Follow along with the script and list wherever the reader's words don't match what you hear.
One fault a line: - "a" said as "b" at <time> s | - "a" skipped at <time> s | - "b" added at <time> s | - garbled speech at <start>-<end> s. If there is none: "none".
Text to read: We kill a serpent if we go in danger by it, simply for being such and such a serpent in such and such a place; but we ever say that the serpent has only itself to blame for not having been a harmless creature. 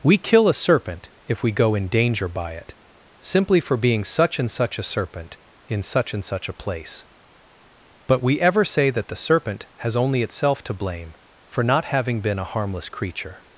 none